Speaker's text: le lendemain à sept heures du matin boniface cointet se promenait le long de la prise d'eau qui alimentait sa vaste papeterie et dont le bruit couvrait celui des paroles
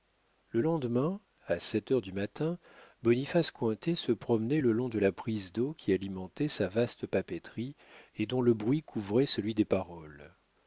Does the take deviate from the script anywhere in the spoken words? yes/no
no